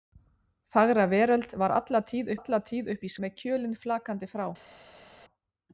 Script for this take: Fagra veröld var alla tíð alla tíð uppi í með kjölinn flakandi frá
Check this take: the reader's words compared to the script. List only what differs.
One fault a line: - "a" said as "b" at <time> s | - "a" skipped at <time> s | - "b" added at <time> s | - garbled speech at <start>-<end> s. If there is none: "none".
none